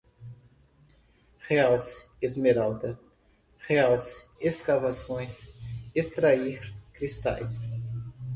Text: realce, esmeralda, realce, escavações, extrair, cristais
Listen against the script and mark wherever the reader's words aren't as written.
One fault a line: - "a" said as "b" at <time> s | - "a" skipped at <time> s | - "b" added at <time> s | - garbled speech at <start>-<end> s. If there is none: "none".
none